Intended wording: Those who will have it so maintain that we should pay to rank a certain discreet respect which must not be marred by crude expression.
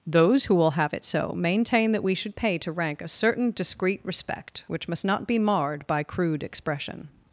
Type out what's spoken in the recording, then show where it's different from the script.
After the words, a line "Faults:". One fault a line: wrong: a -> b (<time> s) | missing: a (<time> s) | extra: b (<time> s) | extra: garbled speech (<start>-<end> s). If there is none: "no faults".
Those who will have it so maintain that we should pay to rank a certain discreet respect which must not be marred by crude expression.
Faults:
no faults